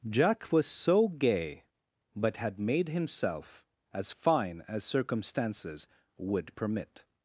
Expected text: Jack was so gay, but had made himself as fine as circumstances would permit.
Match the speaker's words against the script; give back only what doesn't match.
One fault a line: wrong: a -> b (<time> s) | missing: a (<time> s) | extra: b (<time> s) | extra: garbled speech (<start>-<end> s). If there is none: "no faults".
no faults